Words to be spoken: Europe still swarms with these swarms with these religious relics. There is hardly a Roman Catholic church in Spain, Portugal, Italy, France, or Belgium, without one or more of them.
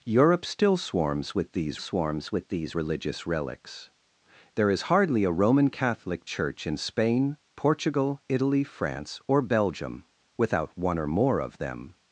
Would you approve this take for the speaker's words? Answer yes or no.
yes